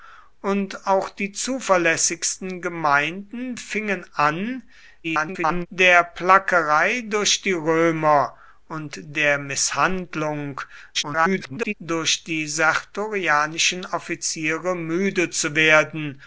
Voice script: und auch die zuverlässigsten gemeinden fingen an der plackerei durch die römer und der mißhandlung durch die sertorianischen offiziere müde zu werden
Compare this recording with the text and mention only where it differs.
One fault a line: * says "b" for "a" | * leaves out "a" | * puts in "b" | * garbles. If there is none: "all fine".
* garbles
* garbles